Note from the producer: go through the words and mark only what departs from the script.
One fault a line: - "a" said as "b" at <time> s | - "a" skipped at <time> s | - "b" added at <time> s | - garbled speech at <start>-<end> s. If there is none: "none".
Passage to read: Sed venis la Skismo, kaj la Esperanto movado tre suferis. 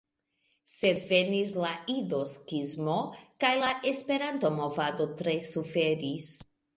- "Ido" added at 1.9 s